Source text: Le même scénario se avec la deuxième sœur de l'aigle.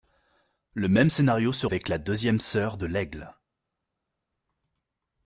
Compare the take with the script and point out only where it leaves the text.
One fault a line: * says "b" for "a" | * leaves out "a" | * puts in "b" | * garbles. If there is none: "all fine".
all fine